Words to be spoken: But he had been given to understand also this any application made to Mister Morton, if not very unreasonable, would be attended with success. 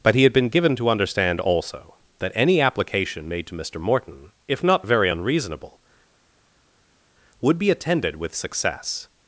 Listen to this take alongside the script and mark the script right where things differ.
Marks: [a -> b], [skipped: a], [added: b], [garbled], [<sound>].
But he had been given to understand also [this -> that] any application made to Mister Morton, if not very unreasonable, would be attended with success.